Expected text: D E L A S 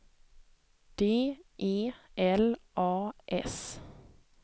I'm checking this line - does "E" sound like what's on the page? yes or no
yes